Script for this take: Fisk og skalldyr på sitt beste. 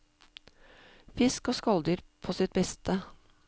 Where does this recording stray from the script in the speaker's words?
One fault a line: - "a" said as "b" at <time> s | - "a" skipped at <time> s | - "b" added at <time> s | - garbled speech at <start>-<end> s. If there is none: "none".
none